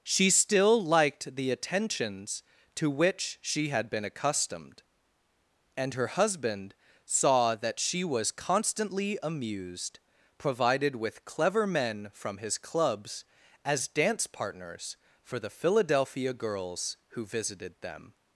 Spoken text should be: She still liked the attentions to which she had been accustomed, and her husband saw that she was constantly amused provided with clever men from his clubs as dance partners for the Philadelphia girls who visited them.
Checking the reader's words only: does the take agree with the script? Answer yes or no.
yes